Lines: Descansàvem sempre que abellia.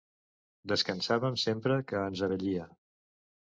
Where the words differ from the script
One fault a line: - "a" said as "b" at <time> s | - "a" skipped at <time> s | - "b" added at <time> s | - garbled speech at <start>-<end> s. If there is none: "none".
- "ens" added at 2.1 s